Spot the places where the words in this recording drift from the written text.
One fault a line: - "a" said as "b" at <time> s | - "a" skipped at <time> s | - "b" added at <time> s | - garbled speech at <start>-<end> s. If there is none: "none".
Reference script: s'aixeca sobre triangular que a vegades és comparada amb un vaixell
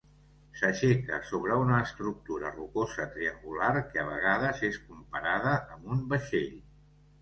- "una estructura rocosa" added at 1.6 s